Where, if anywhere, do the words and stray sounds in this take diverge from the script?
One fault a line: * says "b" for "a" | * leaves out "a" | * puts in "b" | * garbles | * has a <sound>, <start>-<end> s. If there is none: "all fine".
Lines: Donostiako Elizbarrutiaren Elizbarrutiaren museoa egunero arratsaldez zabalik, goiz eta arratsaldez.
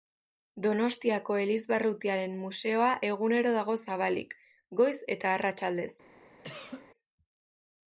* leaves out "Elizbarrutiaren"
* says "dago" for "arratsaldez"
* has a cough, 6.4-6.9 s